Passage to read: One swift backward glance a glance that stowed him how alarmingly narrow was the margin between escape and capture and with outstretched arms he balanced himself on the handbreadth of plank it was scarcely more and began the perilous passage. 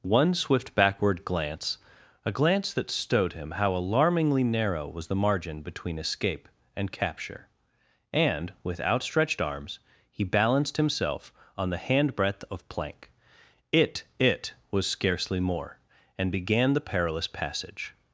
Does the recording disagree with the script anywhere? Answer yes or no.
yes